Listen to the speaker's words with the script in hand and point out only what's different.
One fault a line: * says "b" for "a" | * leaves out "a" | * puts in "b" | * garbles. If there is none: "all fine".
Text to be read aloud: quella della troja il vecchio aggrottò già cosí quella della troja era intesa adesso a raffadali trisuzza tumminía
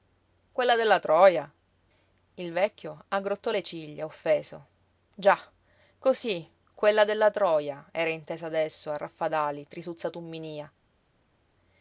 * puts in "le ciglia offeso"